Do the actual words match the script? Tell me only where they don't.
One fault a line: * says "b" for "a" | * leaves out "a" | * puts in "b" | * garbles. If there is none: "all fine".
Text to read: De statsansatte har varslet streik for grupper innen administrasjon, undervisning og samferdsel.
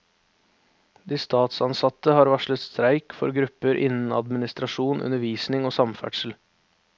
all fine